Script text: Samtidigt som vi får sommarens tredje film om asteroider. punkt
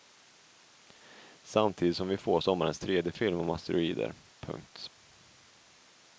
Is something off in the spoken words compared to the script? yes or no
no